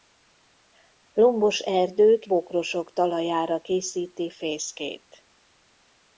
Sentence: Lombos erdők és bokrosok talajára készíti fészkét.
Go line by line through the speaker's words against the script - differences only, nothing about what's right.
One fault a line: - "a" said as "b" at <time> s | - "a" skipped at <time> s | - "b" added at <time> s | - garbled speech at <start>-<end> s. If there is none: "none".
- "és" skipped at 2.2 s